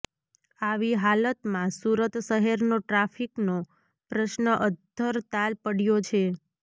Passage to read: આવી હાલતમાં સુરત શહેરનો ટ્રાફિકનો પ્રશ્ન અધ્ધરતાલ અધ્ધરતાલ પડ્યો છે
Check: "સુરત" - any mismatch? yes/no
no